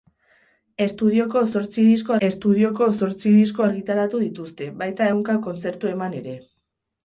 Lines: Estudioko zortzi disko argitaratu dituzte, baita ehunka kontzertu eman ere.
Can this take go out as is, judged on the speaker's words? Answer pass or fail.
fail